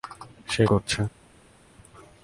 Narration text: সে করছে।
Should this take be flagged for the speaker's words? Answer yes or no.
no